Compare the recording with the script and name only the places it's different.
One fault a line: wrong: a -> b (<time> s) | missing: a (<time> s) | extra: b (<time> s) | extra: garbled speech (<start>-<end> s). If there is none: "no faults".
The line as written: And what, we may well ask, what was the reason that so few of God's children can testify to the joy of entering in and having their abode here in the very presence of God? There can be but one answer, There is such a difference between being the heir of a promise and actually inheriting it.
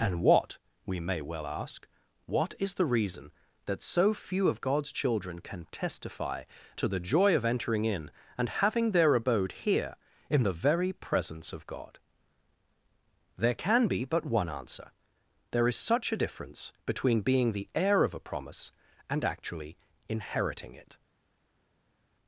wrong: was -> is (2.6 s)